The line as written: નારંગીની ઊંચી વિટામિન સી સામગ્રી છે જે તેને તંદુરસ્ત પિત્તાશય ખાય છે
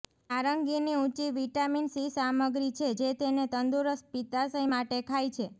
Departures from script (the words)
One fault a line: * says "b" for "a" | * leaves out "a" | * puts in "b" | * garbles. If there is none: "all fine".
* puts in "માટે"